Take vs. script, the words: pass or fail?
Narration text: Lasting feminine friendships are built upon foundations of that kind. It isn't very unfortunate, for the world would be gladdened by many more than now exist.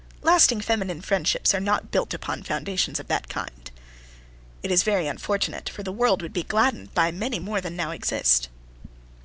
fail